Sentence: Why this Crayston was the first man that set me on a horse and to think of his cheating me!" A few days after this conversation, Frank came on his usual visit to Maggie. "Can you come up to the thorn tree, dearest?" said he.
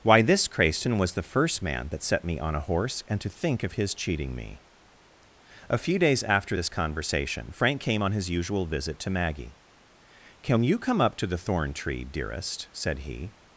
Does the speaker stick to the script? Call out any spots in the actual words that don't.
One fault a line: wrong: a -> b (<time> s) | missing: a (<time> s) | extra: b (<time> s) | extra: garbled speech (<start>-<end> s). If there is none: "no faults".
no faults